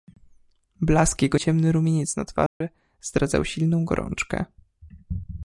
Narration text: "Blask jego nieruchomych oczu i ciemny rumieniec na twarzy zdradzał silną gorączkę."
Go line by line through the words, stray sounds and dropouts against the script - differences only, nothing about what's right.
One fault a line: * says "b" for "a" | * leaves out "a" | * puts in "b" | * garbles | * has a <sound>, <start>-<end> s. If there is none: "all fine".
* leaves out "nieruchomych oczu i"
* has a dropout, 2.5-2.6 s